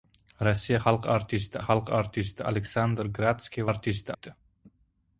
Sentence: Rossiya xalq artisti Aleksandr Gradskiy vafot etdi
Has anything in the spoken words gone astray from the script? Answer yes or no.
yes